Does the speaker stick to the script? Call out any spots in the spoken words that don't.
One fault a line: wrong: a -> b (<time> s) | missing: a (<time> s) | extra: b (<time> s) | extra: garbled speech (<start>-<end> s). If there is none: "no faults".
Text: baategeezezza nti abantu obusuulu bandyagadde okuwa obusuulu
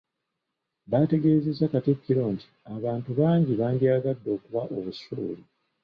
extra: katikkiro (1.7 s)
wrong: obusuulu -> bangi (3.2 s)